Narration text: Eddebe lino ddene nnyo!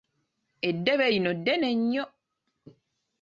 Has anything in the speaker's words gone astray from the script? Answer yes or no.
no